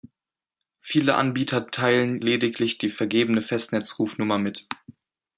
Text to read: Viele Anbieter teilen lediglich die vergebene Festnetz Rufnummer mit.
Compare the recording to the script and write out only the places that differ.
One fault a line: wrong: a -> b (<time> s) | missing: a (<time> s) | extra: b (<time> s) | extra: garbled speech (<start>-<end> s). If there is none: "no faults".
no faults